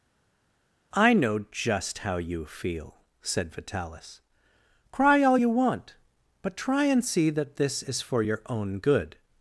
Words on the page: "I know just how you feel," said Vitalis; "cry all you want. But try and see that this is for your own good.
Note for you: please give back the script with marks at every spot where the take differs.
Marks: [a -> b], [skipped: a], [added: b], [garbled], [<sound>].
"I know just how you feel," said Vitalis; "cry all you want. But try and see that this is for your own good.